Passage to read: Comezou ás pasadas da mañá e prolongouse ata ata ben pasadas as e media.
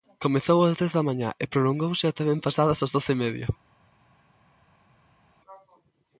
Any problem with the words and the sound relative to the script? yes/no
yes